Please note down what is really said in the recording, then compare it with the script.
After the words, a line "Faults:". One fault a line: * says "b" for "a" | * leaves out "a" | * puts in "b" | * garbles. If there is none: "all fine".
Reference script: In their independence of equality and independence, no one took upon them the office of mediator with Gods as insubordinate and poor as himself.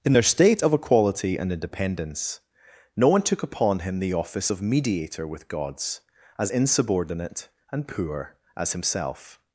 In their state of equality and independence, no one took upon him the office of mediator with Gods as insubordinate and poor as himself.
Faults:
* says "state" for "independence"
* says "him" for "them"